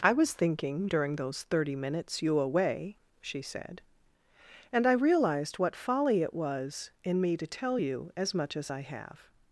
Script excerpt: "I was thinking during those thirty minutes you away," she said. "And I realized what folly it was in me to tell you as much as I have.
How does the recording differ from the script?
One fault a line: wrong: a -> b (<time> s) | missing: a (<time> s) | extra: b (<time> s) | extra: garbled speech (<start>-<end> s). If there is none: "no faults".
no faults